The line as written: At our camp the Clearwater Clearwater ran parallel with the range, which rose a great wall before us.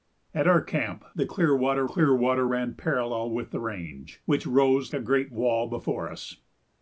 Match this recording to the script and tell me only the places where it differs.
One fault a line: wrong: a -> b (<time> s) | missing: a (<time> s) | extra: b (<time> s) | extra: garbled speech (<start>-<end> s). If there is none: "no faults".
no faults